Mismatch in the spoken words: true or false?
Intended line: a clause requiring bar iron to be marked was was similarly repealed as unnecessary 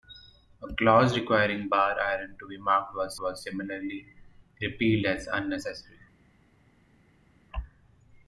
false